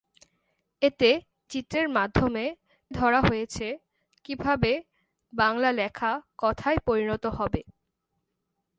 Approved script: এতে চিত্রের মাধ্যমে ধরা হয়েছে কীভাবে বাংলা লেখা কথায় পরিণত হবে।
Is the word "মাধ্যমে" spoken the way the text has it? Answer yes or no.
yes